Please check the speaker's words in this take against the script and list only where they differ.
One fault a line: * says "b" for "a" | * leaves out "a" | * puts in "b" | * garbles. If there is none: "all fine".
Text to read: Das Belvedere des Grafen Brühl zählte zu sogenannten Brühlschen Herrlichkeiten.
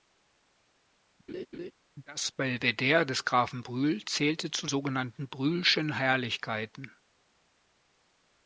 all fine